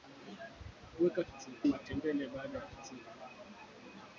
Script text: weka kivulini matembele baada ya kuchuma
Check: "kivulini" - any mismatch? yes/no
yes